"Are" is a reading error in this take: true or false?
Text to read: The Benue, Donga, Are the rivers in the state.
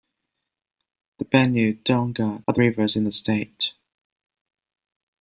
false